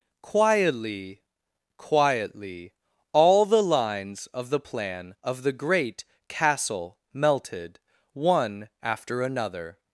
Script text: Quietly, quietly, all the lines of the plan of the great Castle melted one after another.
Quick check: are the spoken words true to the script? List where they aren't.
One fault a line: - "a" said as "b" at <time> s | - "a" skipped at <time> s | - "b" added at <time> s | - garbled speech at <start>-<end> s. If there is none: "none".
none